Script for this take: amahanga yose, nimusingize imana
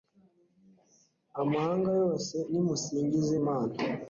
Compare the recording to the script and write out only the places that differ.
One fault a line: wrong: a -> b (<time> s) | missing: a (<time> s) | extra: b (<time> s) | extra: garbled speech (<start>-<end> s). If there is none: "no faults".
no faults